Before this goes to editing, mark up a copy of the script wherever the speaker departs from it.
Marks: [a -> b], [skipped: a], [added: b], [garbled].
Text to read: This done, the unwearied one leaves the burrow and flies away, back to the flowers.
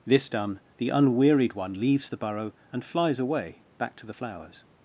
This done, the unwearied one leaves the burrow and flies away, back to the flowers.